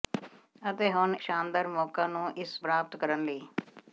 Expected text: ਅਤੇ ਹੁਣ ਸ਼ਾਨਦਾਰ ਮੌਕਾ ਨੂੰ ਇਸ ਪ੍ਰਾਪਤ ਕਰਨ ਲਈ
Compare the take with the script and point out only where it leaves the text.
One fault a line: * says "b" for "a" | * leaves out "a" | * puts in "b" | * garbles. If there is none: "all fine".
all fine